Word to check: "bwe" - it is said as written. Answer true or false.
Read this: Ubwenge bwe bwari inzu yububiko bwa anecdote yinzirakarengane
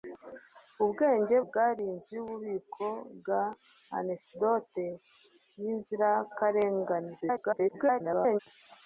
false